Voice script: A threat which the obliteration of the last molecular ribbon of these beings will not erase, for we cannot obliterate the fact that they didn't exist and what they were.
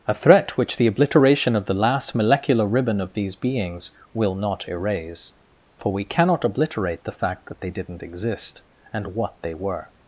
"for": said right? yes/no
yes